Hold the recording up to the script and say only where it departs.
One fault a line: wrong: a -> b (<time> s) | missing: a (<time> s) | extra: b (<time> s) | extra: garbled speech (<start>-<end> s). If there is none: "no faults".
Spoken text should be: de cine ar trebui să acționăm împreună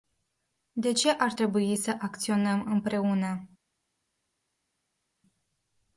wrong: cine -> ce (0.9 s)